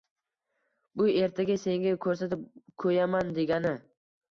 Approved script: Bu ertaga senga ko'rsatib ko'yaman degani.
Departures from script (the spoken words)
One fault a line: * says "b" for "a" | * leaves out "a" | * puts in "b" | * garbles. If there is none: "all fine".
all fine